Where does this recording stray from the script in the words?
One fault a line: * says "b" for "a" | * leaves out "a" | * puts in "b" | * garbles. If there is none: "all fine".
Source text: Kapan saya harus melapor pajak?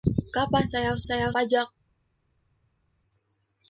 * says "saya" for "melapor"